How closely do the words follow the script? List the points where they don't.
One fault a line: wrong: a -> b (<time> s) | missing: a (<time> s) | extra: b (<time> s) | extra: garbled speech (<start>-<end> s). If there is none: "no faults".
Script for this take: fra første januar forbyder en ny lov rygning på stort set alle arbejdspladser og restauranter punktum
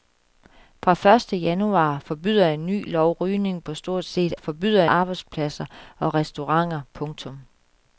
wrong: alle -> forbyder (4.3 s)